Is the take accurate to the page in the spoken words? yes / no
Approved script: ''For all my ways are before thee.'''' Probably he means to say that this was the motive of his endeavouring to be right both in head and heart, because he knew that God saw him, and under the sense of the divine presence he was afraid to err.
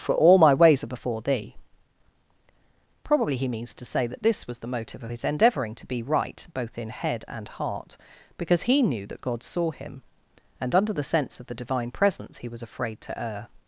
yes